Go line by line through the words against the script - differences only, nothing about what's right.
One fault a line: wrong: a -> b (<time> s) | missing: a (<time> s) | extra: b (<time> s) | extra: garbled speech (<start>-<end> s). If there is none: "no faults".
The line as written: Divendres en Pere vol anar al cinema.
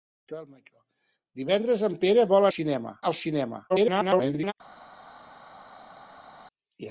wrong: anar -> cinema (2.5 s)
extra: garbled speech (3.7-4.5 s)